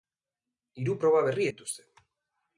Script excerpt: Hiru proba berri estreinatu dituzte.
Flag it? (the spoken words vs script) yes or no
yes